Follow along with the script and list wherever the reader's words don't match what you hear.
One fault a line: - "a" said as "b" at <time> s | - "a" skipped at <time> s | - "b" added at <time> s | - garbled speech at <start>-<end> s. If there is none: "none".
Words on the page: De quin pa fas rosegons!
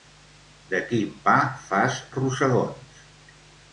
none